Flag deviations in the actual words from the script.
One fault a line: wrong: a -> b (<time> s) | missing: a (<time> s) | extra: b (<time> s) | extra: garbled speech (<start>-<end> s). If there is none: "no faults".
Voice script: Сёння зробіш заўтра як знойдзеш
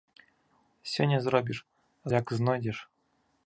missing: заўтра (1.6 s)